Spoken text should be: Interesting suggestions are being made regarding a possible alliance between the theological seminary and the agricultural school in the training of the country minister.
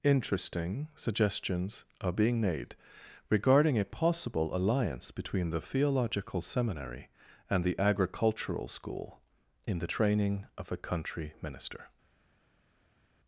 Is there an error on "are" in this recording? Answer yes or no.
no